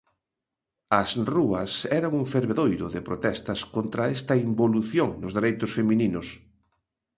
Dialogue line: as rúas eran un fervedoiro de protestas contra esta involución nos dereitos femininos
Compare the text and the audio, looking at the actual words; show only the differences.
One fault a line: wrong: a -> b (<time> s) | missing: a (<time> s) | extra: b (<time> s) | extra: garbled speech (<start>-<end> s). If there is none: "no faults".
no faults